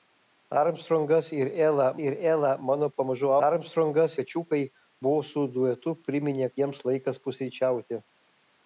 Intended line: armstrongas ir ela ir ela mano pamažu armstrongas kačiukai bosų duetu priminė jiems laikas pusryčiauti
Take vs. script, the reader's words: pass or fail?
pass